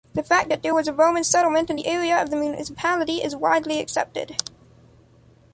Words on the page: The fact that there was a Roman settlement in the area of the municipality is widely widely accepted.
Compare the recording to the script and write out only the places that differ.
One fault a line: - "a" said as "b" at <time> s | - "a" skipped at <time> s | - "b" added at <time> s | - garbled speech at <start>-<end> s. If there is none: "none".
- "widely" skipped at 3.8 s